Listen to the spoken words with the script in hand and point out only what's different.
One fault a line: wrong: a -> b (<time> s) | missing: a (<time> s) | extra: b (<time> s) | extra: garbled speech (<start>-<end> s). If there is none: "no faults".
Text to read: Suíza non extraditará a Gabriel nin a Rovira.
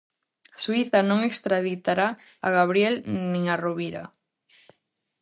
no faults